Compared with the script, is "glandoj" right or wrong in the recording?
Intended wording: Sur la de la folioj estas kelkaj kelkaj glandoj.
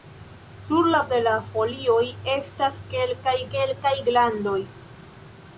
right